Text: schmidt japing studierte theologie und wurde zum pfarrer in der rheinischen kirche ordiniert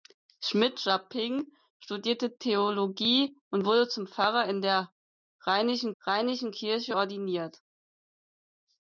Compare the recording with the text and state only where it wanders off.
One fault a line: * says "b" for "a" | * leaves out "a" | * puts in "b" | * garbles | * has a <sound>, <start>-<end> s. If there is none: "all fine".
* puts in "rheinischen"